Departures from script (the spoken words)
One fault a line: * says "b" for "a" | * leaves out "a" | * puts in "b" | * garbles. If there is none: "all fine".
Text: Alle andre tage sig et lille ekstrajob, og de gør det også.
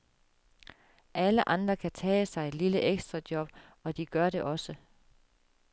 * puts in "kan"